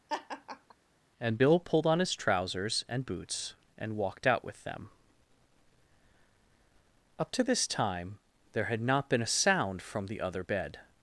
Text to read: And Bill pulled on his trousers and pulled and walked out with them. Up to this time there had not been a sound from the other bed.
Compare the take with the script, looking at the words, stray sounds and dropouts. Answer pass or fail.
fail